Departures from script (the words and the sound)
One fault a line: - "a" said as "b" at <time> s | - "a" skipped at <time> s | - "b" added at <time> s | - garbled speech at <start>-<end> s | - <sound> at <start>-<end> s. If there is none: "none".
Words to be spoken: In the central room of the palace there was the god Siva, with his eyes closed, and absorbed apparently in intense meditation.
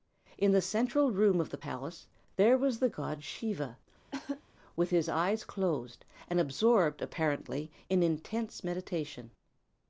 - cough at 4.1-4.4 s